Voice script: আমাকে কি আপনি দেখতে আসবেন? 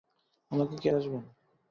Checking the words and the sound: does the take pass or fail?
fail